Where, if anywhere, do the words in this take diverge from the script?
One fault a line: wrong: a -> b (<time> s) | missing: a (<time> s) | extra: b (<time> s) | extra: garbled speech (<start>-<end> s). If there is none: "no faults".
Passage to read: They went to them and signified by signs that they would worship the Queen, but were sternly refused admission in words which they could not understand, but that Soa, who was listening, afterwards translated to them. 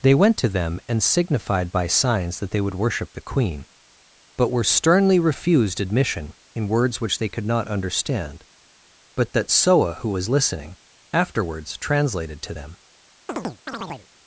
no faults